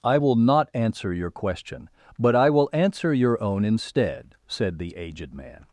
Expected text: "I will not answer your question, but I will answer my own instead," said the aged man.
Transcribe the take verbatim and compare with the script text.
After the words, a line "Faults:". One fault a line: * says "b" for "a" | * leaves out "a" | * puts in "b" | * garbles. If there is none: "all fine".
"I will not answer your question, but I will answer your own instead," said the aged man.
Faults:
* says "your" for "my"